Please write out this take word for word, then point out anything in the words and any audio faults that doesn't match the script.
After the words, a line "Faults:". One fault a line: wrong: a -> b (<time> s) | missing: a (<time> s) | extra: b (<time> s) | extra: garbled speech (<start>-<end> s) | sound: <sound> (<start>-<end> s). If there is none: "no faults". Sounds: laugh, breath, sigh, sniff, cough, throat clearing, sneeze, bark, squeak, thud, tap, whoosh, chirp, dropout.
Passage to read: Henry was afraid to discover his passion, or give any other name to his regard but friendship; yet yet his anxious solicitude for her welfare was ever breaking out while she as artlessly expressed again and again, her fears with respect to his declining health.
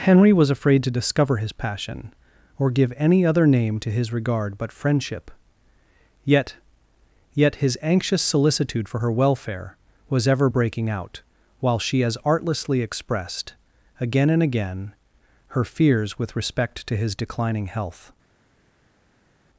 Henry was afraid to discover his passion, or give any other name to his regard but friendship; yet yet his anxious solicitude for her welfare was ever breaking out while she as artlessly expressed again and again, her fears with respect to his declining health.
Faults:
no faults